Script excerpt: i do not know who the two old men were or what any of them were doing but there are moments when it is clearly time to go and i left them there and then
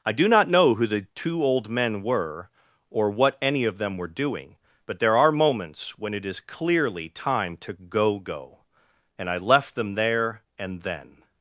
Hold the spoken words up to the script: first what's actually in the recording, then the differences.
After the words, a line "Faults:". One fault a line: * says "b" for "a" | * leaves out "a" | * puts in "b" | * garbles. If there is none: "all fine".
i do not know who the two old men were or what any of them were doing but there are moments when it is clearly time to go go and i left them there and then
Faults:
* puts in "go"